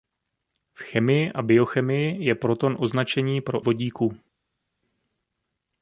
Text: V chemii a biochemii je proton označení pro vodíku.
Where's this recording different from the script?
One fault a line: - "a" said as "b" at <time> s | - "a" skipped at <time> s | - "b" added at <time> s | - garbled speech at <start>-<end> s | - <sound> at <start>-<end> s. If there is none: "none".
none